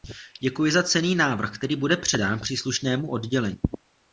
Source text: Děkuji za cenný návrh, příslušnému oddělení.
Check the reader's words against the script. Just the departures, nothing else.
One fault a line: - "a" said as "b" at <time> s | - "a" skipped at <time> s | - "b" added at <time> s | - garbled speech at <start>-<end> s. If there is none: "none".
- "který bude předán" added at 1.6 s